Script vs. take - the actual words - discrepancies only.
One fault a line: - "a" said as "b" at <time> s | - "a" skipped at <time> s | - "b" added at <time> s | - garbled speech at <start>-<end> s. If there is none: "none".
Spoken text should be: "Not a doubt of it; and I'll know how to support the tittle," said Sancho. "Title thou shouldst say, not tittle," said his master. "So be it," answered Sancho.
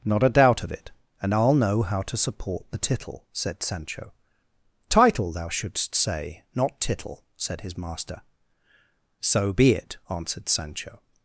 none